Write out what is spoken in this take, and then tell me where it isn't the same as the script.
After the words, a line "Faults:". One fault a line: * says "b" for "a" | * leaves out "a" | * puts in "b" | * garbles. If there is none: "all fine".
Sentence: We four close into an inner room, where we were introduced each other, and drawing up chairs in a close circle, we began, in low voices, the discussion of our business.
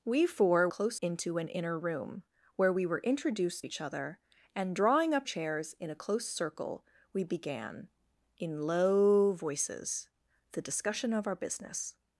We four close into an inner room, where we were introduced each other, and drawing up chairs in a close circle, we began, in low voices, the discussion of our business.
Faults:
all fine